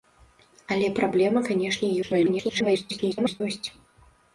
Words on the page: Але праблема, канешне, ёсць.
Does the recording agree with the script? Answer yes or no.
no